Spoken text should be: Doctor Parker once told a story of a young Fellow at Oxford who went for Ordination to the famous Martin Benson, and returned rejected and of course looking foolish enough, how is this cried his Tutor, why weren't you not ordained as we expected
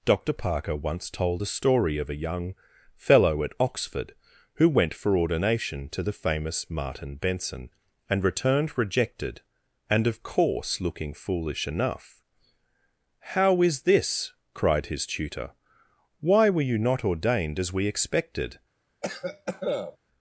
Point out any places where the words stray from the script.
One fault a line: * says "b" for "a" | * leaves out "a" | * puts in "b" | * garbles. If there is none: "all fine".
* says "were" for "weren't"